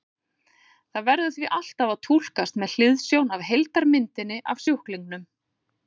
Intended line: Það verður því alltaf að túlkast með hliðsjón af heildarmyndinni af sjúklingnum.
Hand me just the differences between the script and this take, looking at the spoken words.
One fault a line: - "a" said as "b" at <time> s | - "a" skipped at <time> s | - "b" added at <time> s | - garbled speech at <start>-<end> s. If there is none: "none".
none